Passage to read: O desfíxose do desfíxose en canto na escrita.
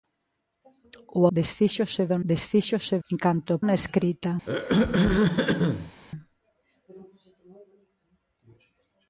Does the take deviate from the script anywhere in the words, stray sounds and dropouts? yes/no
yes